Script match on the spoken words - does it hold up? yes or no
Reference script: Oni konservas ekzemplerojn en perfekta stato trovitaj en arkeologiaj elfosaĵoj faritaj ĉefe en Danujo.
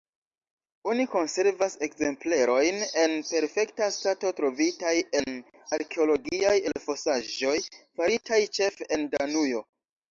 yes